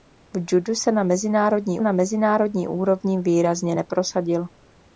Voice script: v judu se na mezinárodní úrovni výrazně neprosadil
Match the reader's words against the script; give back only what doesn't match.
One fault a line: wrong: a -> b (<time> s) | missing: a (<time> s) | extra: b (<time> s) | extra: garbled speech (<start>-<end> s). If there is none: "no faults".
extra: na mezinárodní (1.8 s)